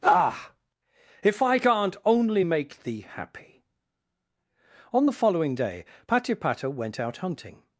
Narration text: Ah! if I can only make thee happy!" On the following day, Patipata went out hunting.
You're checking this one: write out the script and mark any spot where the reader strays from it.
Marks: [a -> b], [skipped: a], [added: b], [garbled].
Ah! if I [can -> can't] only make thee happy!" On the following day, Patipata went out hunting.